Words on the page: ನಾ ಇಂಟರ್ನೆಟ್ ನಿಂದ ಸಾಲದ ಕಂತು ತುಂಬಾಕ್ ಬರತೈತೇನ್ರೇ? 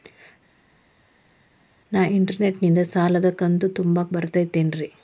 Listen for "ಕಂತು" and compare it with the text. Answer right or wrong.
right